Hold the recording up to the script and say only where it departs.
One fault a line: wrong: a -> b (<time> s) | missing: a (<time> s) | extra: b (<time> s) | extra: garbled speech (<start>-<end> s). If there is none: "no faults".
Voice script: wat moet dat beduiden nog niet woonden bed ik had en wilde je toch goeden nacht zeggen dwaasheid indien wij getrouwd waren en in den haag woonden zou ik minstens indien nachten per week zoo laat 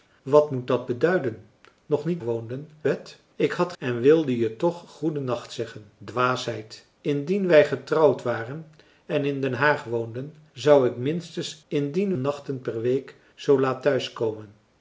no faults